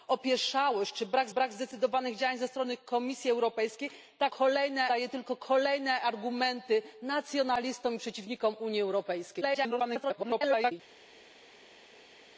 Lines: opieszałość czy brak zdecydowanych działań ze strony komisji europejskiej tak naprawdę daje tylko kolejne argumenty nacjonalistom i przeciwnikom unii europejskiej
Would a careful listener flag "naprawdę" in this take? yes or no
yes